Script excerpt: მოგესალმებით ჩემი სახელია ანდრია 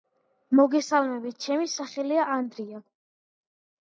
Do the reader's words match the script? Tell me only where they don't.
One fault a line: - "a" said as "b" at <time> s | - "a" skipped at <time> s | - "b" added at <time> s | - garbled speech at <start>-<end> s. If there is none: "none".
none